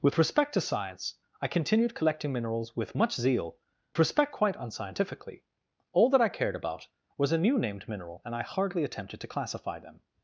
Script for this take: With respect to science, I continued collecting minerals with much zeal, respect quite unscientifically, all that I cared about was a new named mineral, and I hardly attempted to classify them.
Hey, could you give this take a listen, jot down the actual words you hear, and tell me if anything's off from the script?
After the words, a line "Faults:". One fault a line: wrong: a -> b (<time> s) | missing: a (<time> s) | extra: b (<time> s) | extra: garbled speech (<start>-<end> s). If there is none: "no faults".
With respect to science, I continued collecting minerals with much zeal, respect quite unscientifically, all that I cared about was a new named mineral, and I hardly attempted to classify them.
Faults:
no faults